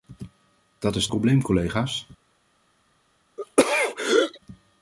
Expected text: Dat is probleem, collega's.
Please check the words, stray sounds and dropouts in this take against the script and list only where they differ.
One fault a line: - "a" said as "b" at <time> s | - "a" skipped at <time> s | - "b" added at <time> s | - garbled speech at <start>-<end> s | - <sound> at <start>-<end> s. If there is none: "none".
- throat clearing at 3.4-4.4 s